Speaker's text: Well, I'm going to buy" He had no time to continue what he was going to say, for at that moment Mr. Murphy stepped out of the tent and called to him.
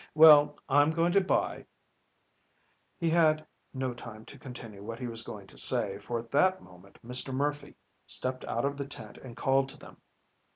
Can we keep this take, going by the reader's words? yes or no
no